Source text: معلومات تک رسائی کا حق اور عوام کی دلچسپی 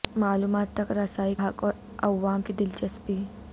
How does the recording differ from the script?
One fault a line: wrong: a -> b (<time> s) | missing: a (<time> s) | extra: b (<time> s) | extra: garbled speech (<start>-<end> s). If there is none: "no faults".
missing: کا (1.4 s)